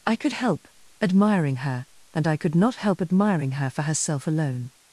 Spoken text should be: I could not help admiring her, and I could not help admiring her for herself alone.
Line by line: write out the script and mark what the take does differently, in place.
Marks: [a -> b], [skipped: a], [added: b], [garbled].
I could [skipped: not] help admiring her, and I could not help admiring her for herself alone.